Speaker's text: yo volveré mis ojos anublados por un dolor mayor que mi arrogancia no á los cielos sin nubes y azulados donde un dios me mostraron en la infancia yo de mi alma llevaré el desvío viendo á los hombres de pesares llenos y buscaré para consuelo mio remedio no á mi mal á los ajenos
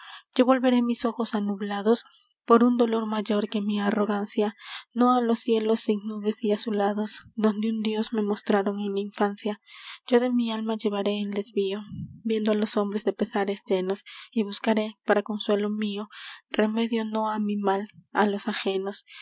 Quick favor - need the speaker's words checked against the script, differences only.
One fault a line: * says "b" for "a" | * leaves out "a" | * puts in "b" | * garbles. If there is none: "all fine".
all fine